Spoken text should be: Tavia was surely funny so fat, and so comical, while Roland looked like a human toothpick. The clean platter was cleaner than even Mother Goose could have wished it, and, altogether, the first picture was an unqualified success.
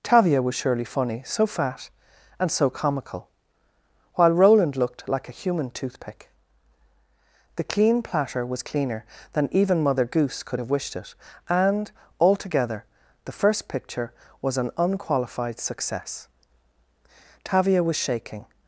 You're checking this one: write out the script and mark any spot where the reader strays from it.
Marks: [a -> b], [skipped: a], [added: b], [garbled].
Tavia was surely funny so fat, and so comical, while Roland looked like a human toothpick. The clean platter was cleaner than even Mother Goose could have wished it, and, altogether, the first picture was an unqualified success. [added: Tavia was shaking]